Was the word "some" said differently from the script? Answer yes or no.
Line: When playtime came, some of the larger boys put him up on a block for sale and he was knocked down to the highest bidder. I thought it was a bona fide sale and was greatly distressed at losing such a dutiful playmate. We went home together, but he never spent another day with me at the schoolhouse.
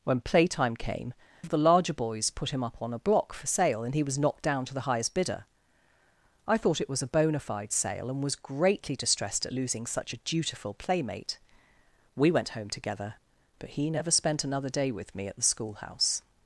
yes